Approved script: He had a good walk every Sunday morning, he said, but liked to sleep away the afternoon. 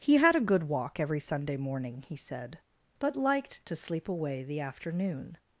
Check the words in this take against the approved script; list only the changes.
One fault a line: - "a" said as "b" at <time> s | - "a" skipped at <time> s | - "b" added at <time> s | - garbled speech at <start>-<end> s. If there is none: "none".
none